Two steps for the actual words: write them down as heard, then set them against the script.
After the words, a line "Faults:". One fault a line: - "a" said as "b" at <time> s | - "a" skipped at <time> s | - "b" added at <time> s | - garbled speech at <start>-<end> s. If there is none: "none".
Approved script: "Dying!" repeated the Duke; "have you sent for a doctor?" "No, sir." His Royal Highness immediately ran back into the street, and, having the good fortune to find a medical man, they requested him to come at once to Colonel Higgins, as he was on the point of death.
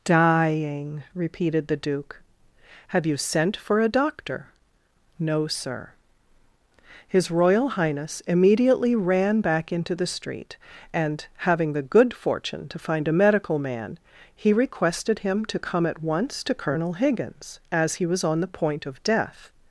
"Dying!" repeated the Duke; "have you sent for a doctor?" "No, sir." His Royal Highness immediately ran back into the street, and, having the good fortune to find a medical man, he requested him to come at once to Colonel Higgins, as he was on the point of death.
Faults:
- "they" said as "he" at 14.3 s